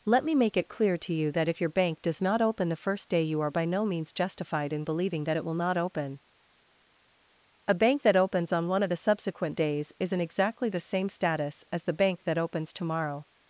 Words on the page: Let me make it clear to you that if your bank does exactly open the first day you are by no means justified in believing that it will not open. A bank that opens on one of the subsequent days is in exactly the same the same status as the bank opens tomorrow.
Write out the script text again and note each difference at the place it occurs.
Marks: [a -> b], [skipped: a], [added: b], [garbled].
Let me make it clear to you that if your bank does [exactly -> not] open the first day you are by no means justified in believing that it will not open. A bank that opens on one of the subsequent days is in exactly the same [skipped: the same] status as the bank [added: that] opens tomorrow.